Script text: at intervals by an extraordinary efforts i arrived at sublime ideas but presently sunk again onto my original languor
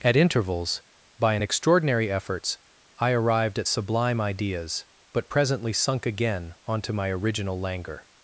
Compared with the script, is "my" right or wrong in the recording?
right